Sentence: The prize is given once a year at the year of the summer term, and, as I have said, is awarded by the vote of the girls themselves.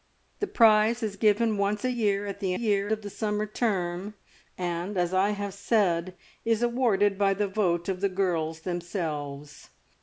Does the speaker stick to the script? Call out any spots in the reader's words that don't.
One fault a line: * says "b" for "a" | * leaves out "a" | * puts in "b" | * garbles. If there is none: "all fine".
all fine